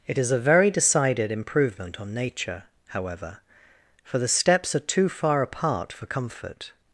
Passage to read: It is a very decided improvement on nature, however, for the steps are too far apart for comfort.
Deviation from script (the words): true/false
false